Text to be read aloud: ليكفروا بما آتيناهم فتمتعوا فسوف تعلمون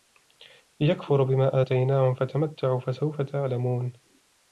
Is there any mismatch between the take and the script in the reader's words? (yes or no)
no